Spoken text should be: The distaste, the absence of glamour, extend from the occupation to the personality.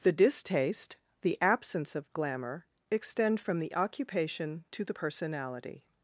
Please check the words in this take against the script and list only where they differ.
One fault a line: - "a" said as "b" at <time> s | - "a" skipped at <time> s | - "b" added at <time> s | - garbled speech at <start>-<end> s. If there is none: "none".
none